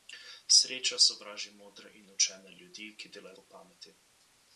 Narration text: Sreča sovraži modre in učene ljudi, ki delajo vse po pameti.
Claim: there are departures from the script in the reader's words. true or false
true